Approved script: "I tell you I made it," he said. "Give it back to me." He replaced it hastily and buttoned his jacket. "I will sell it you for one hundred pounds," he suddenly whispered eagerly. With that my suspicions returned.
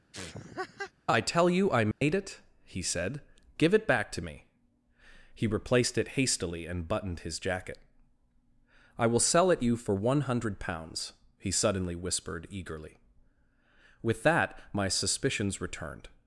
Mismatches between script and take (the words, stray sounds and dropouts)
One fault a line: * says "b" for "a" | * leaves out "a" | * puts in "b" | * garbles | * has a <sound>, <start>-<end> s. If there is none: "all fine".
* has a laugh, 0.1-0.9 s
* has a dropout, 1.9-2.0 s